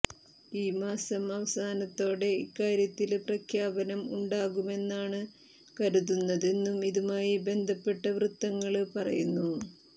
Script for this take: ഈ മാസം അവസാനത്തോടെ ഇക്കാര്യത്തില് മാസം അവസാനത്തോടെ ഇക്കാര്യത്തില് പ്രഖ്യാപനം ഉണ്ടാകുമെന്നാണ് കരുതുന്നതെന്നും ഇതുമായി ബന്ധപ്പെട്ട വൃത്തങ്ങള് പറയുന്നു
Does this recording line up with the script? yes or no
no